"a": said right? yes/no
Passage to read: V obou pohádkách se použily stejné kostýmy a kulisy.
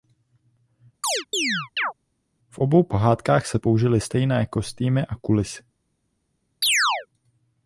yes